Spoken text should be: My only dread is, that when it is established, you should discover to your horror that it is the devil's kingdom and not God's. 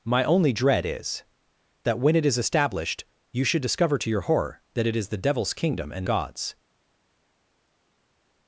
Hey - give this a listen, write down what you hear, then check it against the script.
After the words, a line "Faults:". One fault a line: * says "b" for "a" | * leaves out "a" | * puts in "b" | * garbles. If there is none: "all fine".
My only dread is, that when it is established, you should discover to your horror that it is the devil's kingdom and God's.
Faults:
* leaves out "not"